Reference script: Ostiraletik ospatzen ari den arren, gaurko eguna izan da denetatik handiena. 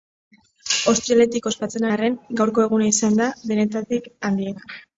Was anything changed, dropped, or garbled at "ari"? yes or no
yes